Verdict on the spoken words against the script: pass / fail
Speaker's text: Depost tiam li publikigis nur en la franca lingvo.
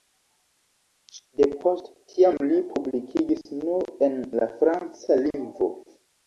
pass